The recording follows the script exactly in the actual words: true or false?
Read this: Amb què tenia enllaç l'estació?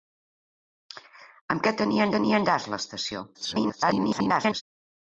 false